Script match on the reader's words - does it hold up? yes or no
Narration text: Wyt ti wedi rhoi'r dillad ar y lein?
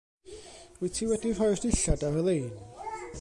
yes